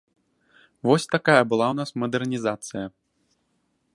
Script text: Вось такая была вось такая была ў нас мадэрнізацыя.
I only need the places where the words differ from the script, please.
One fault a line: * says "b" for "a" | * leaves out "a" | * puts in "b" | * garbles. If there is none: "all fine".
* leaves out "вось такая была"